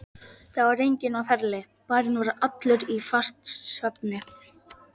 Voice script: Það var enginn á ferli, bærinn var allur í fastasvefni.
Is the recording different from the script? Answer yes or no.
no